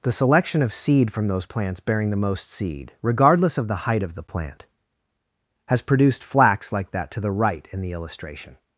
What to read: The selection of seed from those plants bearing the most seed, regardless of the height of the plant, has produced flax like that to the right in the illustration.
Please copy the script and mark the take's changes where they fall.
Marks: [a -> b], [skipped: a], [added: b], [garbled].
The selection of seed from those plants bearing the most seed, regardless of the height of the plant, has produced flax like that to the right in the illustration.